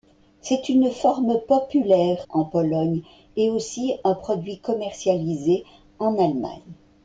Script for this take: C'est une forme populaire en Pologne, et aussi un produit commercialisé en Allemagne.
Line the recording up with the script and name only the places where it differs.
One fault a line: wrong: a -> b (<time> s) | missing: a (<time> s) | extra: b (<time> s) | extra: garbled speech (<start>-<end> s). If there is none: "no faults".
no faults